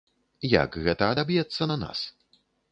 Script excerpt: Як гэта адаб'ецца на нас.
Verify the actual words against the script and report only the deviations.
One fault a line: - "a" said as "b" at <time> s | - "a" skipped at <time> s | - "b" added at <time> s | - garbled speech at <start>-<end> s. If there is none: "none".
none